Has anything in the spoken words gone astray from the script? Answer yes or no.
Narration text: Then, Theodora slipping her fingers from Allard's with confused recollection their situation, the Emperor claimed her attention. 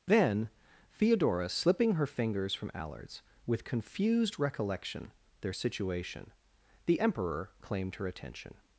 no